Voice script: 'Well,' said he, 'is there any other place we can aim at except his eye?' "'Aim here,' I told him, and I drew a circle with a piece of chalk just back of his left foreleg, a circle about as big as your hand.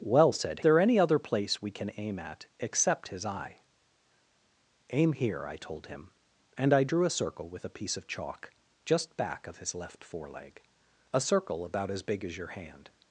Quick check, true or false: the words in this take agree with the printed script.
false